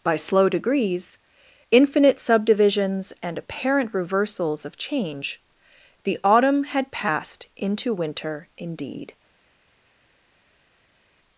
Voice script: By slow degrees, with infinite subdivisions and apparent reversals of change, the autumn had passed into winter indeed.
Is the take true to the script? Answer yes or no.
no